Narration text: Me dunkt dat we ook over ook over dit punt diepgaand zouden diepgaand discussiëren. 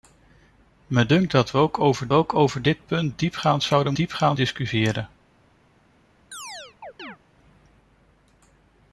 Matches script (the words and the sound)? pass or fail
fail